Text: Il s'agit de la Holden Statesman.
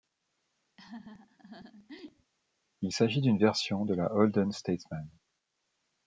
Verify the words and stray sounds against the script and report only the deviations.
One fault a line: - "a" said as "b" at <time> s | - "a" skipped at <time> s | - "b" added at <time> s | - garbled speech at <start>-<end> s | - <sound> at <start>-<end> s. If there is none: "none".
- laugh at 0.8-2.3 s
- "d'une version" added at 3.2 s